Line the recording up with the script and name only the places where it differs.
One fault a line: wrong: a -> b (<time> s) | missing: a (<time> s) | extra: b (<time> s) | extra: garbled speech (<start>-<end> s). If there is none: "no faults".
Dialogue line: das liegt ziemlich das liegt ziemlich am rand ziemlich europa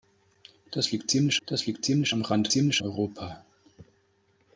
no faults